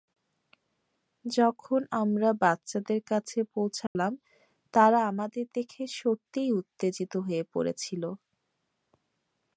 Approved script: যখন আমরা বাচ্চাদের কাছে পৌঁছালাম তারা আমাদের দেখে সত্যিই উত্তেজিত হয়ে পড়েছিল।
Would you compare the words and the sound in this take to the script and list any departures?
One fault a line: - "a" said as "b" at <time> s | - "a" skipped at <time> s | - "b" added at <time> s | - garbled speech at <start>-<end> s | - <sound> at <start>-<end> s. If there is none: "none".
- dropout at 3.9-4.0 s